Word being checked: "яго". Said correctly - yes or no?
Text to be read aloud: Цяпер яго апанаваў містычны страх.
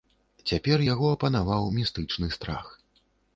yes